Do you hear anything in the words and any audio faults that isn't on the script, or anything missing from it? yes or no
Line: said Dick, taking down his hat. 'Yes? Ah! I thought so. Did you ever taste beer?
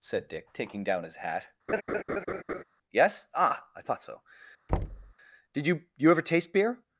yes